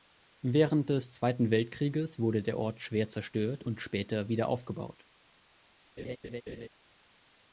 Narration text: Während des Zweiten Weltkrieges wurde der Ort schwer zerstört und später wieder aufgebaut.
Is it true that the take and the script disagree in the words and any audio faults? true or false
true